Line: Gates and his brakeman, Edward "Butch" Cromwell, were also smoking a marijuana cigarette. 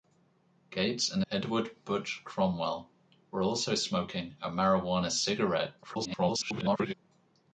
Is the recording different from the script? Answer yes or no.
yes